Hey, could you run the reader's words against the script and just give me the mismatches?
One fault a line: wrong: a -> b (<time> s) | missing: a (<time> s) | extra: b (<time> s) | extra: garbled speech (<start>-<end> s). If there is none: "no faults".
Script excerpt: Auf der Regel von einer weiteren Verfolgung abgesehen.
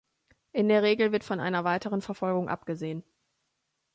wrong: Auf -> In (0.5 s)
extra: wird (1.1 s)